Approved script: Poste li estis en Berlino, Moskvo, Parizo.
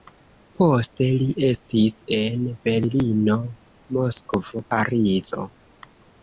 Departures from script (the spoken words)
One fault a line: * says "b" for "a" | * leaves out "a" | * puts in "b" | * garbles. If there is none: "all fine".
all fine